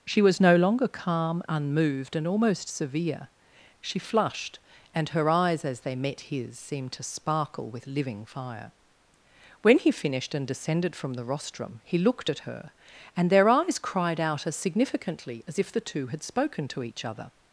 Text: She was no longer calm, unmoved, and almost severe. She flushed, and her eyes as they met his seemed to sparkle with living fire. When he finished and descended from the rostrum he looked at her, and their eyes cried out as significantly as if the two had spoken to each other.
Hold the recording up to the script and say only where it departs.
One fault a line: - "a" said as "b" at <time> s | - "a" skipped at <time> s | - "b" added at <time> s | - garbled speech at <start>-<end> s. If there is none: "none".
none